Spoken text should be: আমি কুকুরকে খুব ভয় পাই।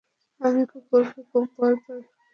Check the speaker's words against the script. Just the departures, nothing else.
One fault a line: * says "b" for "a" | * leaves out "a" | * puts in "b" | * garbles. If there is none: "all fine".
all fine